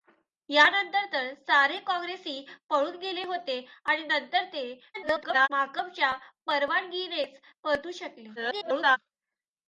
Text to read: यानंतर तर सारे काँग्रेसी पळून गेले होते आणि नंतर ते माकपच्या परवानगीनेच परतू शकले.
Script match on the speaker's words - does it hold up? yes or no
no